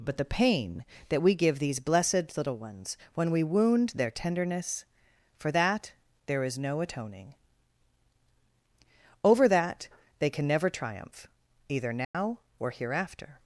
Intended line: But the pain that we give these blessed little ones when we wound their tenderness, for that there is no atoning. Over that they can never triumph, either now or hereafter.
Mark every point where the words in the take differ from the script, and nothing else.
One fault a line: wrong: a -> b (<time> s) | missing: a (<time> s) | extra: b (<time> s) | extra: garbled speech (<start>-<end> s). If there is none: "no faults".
no faults